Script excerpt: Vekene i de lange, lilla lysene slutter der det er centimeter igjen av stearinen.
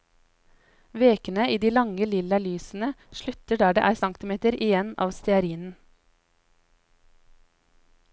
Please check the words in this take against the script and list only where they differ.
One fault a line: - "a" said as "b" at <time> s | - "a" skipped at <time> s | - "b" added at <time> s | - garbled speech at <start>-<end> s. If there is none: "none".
none